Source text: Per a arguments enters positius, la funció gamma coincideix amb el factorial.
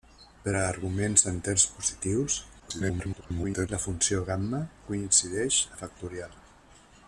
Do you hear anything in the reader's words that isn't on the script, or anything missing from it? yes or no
yes